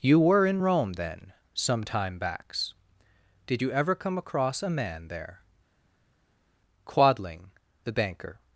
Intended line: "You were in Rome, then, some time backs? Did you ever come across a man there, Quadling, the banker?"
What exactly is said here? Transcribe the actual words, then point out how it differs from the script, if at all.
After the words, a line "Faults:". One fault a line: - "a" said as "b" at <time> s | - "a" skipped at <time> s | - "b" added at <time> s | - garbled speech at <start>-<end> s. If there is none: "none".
"You were in Rome, then, some time backs? Did you ever come across a man there, Quadling, the banker?"
Faults:
none